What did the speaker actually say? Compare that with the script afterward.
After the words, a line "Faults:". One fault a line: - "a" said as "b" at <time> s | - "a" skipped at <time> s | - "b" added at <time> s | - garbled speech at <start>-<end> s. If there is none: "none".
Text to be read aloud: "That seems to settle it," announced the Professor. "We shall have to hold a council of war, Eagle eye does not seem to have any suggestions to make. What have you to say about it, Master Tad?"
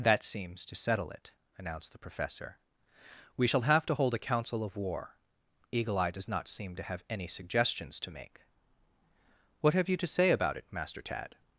"That seems to settle it," announced the Professor. "We shall have to hold a council of war, Eagle eye does not seem to have any suggestions to make. What have you to say about it, Master Tad?"
Faults:
none